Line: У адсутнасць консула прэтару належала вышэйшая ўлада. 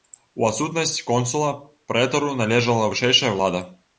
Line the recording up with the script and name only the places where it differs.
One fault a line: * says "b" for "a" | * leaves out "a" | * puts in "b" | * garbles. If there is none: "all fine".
all fine